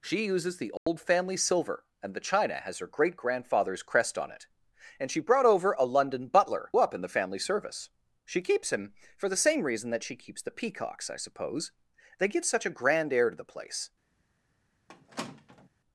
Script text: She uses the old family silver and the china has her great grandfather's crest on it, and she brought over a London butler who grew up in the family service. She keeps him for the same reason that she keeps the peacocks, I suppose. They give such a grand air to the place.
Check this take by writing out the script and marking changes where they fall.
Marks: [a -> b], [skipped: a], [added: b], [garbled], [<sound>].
She uses the old [dropout] family silver and the china has her great grandfather's crest on it, and she brought over a London butler [skipped: who grew] up in the family service. She keeps him for the same reason that she keeps the peacocks, I suppose. They give such a grand air to the place. [squeak]